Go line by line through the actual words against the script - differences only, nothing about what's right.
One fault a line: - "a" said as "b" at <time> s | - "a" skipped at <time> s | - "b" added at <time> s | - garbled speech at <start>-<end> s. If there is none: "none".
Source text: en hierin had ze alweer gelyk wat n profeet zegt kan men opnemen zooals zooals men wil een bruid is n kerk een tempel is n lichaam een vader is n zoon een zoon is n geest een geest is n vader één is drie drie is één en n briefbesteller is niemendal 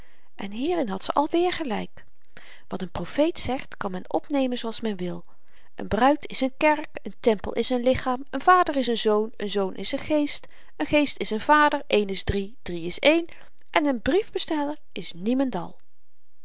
- "zooals" skipped at 4.8 s